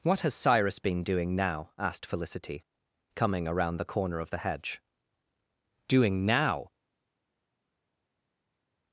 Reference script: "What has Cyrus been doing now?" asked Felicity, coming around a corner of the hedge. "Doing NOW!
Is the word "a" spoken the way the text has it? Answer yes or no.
no